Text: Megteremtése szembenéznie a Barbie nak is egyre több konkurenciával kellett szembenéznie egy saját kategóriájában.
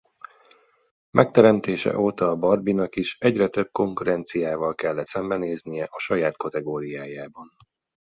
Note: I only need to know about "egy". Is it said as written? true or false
false